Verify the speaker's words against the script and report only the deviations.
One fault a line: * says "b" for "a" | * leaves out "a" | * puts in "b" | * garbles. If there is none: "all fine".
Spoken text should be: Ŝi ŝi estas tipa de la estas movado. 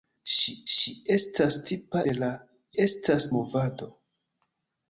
all fine